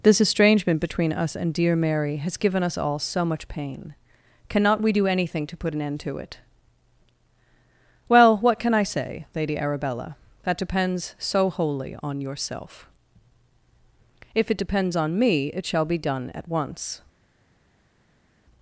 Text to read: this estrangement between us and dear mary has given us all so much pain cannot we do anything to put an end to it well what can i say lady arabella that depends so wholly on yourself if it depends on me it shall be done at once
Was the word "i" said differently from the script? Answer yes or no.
no